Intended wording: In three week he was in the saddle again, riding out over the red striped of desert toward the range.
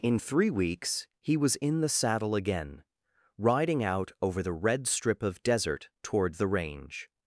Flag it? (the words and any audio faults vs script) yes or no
yes